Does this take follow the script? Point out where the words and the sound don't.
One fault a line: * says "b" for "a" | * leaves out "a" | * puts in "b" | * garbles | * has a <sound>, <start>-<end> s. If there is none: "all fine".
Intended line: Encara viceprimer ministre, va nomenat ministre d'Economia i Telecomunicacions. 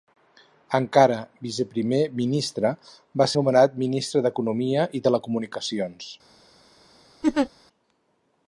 * has a laugh, 7.2-7.5 s